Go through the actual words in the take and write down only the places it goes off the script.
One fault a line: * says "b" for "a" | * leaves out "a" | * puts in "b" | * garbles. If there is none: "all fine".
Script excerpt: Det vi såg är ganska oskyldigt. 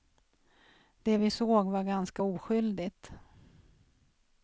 * says "var" for "är"